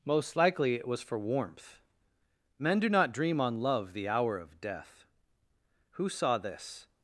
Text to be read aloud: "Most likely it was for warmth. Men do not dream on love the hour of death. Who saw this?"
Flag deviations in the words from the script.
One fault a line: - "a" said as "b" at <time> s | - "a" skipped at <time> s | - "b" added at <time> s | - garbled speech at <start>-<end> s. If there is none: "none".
none